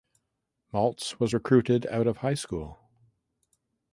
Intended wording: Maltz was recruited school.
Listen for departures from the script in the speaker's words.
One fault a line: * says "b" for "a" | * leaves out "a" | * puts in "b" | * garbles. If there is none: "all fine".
* puts in "out of high"